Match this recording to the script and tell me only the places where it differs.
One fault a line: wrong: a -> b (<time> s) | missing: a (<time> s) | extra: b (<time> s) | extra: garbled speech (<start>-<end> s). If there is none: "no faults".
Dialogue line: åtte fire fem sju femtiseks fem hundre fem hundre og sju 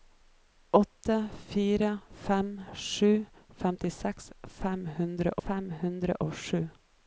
no faults